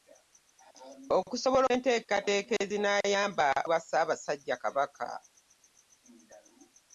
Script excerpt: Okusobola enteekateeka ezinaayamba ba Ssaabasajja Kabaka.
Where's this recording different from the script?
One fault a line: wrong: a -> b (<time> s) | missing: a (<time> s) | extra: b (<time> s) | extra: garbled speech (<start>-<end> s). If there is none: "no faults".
no faults